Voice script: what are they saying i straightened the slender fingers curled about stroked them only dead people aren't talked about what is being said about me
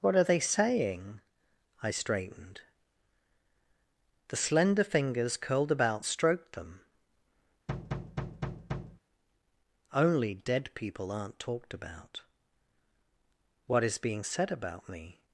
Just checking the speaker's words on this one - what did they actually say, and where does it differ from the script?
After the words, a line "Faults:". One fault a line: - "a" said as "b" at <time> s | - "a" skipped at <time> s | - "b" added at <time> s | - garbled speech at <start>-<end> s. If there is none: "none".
what are they saying i straightened the slender fingers curled about stroked them only dead people aren't talked about what is being said about me
Faults:
none